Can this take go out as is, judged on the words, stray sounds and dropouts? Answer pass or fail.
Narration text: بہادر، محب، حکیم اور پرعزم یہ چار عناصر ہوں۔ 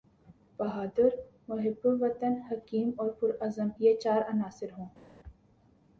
fail